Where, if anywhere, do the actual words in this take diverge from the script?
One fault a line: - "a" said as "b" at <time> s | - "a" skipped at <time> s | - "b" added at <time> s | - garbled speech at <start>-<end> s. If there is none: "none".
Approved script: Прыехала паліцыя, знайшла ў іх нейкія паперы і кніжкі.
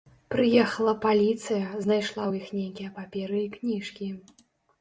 none